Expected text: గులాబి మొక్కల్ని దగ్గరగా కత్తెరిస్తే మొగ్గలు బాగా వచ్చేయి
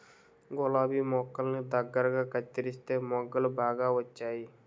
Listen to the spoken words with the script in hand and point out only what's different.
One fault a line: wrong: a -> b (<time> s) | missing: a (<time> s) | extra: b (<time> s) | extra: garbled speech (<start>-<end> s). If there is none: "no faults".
no faults